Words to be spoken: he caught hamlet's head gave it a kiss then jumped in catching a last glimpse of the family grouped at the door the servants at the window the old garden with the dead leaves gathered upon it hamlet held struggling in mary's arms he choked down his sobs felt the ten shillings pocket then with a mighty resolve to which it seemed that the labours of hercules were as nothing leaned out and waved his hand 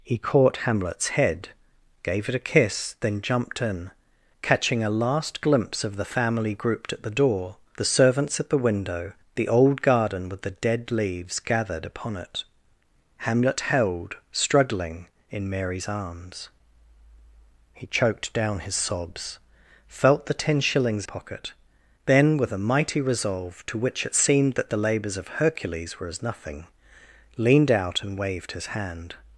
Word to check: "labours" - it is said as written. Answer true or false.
true